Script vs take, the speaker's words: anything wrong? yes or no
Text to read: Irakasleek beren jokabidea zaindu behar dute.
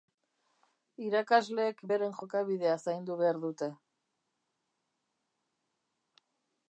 no